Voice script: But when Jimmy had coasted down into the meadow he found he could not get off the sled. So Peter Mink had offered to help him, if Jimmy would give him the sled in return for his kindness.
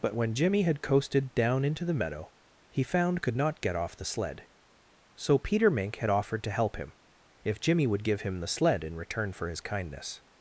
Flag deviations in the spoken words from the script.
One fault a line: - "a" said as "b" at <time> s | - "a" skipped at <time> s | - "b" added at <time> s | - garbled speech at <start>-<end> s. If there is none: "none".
- "he" skipped at 3.2 s